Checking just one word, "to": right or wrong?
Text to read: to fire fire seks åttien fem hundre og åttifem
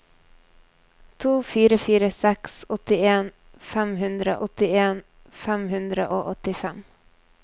right